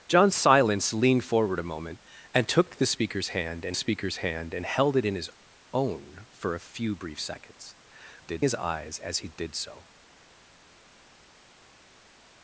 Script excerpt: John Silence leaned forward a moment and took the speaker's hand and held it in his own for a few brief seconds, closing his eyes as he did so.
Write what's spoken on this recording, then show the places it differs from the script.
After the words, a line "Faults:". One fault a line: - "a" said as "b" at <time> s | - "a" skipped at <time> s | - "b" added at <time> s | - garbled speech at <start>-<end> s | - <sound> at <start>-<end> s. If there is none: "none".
John Silence leaned forward a moment and took the speaker's hand and speaker's hand and held it in his own for a few brief seconds, did his eyes as he did so.
Faults:
- "speaker's hand and" added at 3.7 s
- "closing" said as "did" at 8.2 s